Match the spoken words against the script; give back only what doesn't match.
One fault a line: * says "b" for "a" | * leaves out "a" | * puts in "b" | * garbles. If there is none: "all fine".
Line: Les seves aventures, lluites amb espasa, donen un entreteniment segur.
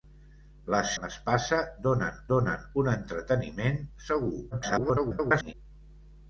* leaves out "seves aventures lluites"
* puts in "donen"
* garbles